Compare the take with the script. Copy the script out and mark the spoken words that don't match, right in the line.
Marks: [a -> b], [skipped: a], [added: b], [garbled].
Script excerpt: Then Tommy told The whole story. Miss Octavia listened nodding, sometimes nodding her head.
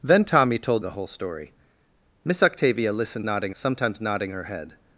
Then Tommy told The whole story. Miss Octavia listened nodding, sometimes nodding her head.